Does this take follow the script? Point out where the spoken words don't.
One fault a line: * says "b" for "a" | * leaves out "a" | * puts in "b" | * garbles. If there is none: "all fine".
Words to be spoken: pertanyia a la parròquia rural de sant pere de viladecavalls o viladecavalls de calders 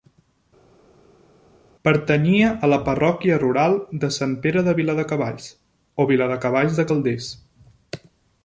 all fine